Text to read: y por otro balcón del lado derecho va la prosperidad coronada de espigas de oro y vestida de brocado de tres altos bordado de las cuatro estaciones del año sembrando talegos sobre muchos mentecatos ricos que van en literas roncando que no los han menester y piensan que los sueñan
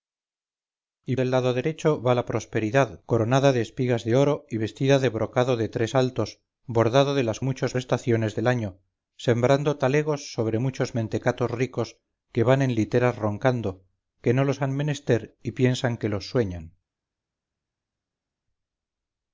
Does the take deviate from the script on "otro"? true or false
true